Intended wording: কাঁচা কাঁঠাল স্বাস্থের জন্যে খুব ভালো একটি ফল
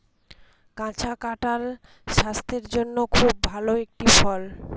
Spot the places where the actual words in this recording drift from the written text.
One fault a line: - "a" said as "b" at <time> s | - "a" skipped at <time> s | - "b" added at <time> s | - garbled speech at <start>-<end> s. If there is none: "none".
none